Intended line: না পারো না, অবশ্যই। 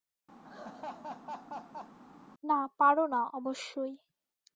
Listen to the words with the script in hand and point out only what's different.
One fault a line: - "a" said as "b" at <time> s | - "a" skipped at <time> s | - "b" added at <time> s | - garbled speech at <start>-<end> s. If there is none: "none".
none